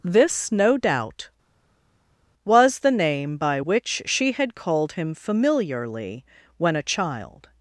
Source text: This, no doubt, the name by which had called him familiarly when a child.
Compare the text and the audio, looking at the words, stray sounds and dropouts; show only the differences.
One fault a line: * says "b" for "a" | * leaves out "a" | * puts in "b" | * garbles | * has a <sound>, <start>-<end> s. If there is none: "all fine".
* puts in "was"
* puts in "she"